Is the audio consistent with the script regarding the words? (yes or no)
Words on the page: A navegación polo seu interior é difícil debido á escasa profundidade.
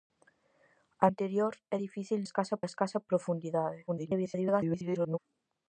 no